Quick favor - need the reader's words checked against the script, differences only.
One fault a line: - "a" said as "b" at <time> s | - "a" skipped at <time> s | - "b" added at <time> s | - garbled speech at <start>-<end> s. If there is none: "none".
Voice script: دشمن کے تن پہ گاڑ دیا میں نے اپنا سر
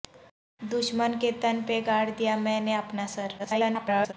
- garbled speech at 3.4-4.1 s